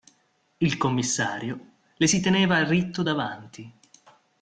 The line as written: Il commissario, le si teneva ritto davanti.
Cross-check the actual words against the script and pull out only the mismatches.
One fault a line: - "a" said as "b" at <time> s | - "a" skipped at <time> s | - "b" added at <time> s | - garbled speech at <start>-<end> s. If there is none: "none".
none